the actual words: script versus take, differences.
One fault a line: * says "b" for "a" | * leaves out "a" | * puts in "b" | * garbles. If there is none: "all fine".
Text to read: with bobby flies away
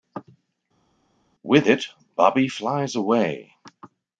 * puts in "it"